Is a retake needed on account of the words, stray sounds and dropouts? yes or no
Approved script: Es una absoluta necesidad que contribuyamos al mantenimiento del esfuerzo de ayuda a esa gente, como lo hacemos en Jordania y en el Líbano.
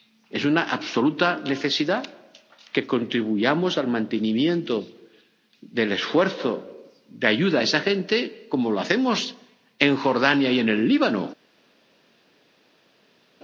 no